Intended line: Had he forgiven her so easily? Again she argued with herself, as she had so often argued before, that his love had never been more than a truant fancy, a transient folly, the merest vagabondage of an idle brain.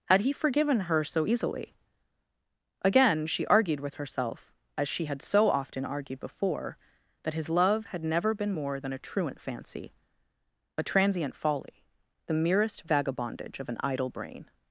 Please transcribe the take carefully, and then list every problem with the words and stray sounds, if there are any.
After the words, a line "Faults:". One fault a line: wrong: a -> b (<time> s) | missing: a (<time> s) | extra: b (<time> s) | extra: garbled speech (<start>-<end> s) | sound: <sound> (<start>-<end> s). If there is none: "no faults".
Had he forgiven her so easily? Again she argued with herself, as she had so often argued before, that his love had never been more than a truant fancy, a transient folly, the merest vagabondage of an idle brain.
Faults:
no faults